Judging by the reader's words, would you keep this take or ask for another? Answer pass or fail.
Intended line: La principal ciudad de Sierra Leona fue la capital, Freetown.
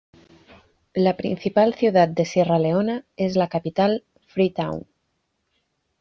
fail